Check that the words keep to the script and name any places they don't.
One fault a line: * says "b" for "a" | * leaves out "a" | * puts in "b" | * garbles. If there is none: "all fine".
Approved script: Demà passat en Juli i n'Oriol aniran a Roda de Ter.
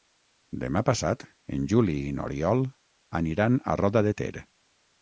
all fine